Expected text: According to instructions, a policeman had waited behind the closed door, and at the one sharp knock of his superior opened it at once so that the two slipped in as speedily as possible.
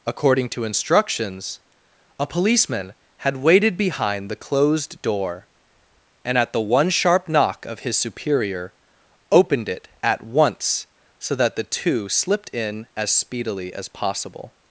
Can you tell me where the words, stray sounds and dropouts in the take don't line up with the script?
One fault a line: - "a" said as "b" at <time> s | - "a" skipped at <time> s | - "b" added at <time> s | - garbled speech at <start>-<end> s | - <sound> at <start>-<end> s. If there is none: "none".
none